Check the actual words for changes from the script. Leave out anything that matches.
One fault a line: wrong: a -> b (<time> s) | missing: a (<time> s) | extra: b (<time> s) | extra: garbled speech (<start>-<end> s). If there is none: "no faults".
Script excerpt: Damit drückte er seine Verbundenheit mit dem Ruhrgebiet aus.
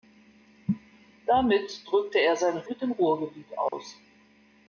missing: Verbundenheit (2.6 s)